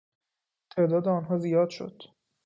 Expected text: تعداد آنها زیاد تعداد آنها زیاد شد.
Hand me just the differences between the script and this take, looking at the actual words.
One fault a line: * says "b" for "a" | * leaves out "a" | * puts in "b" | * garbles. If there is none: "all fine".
* leaves out "تعداد آنها زیاد"